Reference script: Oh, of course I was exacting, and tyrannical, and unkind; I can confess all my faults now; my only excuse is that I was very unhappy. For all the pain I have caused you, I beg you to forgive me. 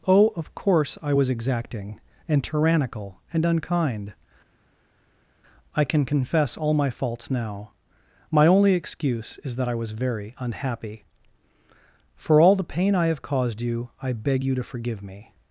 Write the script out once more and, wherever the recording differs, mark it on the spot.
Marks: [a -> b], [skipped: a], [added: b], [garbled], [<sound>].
Oh, of course I was exacting, and tyrannical, and unkind; I can confess all my faults now; my only excuse is that I was very unhappy. For all the pain I have caused you, I beg you to forgive me.